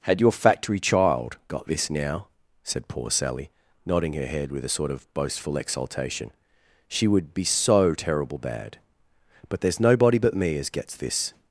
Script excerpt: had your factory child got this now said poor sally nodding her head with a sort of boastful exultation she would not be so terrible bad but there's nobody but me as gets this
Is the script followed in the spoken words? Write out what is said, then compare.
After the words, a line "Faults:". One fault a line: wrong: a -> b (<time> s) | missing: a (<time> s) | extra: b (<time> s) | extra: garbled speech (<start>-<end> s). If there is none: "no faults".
had your factory child got this now said poor sally nodding her head with a sort of boastful exultation she would be so terrible bad but there's nobody but me as gets this
Faults:
missing: not (7.3 s)